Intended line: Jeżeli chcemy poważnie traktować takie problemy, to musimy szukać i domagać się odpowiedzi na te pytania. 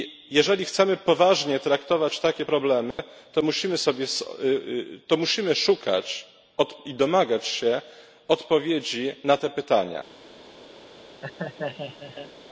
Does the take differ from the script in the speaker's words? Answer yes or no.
no